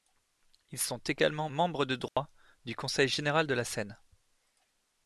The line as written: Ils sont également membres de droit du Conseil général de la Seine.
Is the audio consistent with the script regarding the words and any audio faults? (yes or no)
no